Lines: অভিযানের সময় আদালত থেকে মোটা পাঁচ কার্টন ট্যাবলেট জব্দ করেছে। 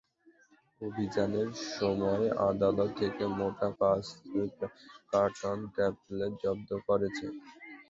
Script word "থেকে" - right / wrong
right